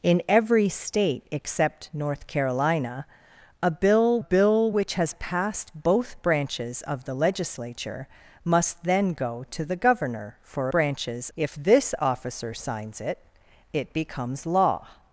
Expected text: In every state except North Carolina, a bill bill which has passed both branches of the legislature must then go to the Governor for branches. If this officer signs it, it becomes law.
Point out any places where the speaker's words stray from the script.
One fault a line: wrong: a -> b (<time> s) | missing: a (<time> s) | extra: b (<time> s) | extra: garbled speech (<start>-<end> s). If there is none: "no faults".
no faults